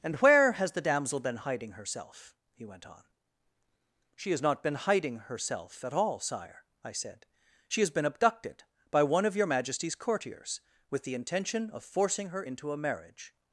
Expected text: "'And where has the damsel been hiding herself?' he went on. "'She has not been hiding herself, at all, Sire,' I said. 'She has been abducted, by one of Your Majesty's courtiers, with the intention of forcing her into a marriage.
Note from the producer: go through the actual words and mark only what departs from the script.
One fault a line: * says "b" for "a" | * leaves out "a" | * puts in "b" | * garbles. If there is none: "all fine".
all fine